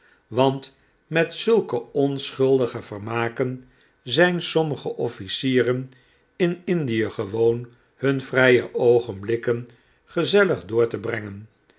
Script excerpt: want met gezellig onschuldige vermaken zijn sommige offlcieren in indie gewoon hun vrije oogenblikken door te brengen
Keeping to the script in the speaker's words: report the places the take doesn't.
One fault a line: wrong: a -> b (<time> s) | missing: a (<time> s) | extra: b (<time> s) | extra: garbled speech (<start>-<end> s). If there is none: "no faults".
wrong: gezellig -> zulke (1.3 s)
extra: gezellig (10.0 s)